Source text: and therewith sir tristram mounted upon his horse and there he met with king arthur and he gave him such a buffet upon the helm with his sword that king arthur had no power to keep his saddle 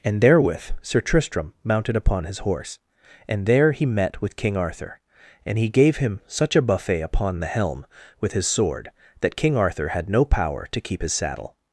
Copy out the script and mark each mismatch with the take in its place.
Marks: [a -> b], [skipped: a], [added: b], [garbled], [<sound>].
and therewith sir tristram mounted upon his horse and there he met with king arthur and he gave him such a buffet upon the helm with his sword that king arthur had no power to keep his saddle